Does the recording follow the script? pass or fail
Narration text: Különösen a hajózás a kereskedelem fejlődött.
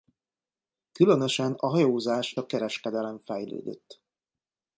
pass